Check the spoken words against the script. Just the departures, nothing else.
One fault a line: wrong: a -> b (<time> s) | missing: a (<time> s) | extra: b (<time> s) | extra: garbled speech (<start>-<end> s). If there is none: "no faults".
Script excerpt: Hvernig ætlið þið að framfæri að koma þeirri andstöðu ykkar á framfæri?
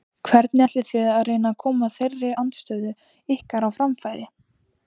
wrong: framfæri -> reyna (1.3 s)